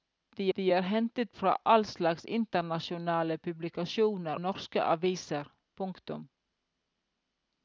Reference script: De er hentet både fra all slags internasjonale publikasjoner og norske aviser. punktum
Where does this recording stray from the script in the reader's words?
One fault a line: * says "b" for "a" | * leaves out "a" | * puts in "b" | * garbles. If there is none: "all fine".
* puts in "de"
* leaves out "både"
* leaves out "og"